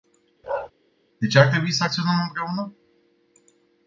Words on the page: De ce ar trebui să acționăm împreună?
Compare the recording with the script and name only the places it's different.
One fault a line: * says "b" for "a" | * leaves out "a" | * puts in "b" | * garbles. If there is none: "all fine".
all fine